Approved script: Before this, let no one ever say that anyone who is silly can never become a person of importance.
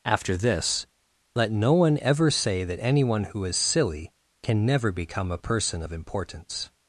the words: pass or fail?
fail